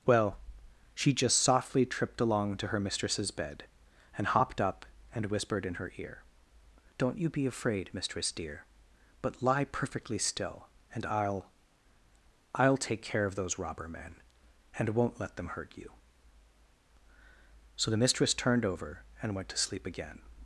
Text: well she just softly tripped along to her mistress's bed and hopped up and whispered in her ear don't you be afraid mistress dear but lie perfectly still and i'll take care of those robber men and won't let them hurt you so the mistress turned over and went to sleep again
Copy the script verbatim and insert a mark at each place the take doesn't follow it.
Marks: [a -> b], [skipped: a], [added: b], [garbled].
well she just softly tripped along to her mistress's bed and hopped up and whispered in her ear don't you be afraid mistress dear but lie perfectly still and i'll [added: i'll] take care of those robber men and won't let them hurt you so the mistress turned over and went to sleep again